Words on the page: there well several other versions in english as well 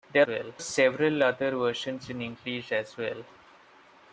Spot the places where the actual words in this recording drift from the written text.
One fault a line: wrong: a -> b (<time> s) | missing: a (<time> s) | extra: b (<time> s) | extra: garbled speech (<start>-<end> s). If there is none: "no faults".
no faults